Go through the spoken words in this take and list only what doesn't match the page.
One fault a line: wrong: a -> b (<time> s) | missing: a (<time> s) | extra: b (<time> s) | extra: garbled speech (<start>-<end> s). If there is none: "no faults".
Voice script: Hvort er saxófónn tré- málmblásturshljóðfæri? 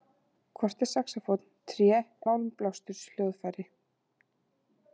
no faults